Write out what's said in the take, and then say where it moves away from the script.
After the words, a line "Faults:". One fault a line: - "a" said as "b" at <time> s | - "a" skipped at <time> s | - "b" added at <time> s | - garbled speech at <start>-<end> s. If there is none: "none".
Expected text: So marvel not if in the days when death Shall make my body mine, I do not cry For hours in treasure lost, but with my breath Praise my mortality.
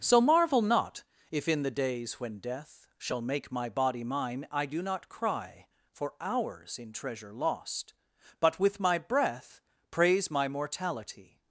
So marvel not if in the days when death Shall make my body mine, I do not cry For hours in treasure lost, but with my breath Praise my mortality.
Faults:
none